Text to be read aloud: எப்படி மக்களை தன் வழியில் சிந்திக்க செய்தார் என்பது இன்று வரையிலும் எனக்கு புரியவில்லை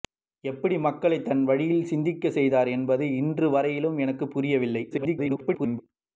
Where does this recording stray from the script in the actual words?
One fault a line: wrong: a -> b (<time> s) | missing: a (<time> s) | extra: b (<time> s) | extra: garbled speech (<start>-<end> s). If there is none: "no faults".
extra: garbled speech (4.9-5.8 s)